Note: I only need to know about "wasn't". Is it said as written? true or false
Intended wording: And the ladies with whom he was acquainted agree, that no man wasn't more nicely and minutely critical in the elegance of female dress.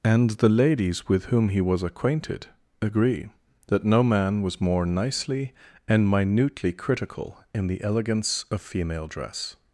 false